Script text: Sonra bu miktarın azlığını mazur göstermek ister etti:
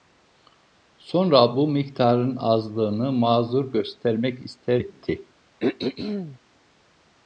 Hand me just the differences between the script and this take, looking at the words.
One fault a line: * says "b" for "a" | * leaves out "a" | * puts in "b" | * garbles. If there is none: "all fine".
all fine